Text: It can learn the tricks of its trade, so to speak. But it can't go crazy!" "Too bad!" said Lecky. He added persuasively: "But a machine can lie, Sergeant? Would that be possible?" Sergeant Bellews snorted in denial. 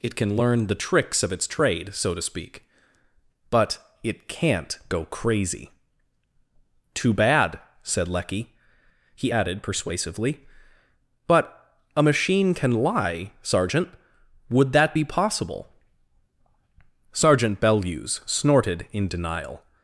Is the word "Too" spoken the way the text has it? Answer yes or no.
yes